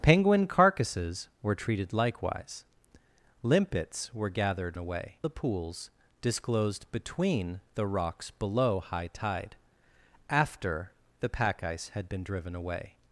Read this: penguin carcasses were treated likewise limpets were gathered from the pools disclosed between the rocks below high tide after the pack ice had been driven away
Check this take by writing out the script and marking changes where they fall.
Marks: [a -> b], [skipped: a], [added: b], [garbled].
penguin carcasses were treated likewise limpets were gathered [from -> away] the pools disclosed between the rocks below high tide after the pack ice had been driven away